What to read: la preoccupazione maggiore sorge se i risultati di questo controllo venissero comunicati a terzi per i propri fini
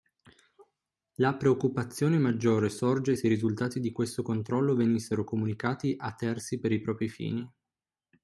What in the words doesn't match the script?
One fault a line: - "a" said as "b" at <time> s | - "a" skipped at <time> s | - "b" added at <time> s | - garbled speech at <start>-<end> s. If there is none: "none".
none